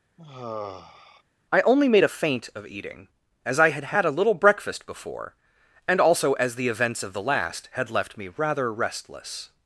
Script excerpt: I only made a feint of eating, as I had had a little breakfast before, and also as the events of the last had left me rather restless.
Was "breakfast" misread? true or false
false